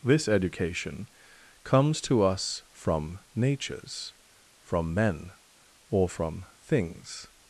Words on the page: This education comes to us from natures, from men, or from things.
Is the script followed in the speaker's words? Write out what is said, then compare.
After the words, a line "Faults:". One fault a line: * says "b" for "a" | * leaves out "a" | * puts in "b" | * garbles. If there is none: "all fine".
This education comes to us from natures, from men, or from things.
Faults:
all fine